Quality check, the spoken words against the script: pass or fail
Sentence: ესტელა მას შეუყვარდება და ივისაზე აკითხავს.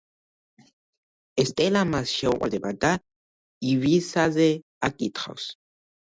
pass